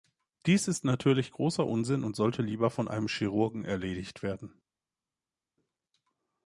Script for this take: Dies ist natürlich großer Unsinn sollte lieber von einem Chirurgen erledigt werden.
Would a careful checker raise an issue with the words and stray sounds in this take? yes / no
yes